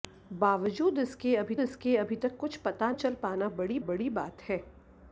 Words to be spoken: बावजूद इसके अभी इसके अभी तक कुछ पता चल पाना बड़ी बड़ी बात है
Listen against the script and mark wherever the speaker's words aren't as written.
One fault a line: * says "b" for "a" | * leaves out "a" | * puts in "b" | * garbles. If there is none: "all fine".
all fine